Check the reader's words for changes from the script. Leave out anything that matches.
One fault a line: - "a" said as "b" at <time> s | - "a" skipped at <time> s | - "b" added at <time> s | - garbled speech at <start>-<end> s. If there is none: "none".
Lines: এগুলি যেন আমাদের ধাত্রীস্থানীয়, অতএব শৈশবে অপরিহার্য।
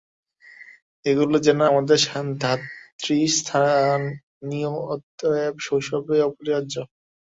none